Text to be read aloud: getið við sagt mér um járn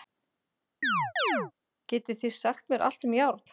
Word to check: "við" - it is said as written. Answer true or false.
false